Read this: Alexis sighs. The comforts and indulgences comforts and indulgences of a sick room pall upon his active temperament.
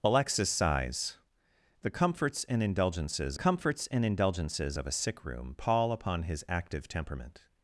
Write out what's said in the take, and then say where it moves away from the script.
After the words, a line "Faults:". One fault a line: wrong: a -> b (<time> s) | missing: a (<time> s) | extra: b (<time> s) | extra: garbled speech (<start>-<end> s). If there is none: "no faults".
Alexis sighs. The comforts and indulgences comforts and indulgences of a sick room pall upon his active temperament.
Faults:
no faults